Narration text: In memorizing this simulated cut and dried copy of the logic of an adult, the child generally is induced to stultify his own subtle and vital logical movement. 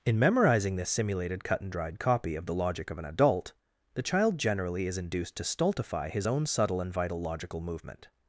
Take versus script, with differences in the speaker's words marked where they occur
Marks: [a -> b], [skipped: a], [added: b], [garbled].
In memorizing this simulated cut and dried copy of the logic of an adult, the child generally is induced to stultify his own subtle and vital logical movement.